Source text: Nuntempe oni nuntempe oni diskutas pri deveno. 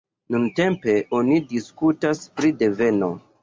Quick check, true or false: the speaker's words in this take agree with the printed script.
false